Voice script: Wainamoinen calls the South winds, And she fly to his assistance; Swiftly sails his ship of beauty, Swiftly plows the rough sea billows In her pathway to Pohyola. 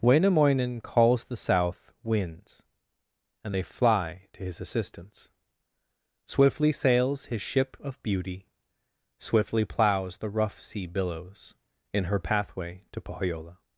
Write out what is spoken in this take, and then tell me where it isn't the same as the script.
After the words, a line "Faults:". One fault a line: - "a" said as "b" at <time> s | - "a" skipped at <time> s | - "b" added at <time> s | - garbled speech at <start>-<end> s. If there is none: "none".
Wainamoinen calls the South winds, And they fly to his assistance; Swiftly sails his ship of beauty, Swiftly plows the rough sea billows In her pathway to Pohyola.
Faults:
- "she" said as "they" at 3.5 s